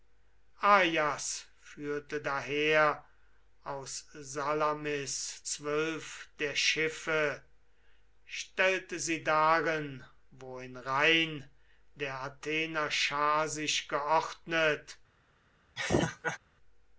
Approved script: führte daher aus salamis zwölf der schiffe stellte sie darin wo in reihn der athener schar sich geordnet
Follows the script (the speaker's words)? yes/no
yes